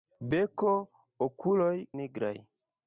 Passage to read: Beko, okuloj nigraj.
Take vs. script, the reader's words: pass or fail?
pass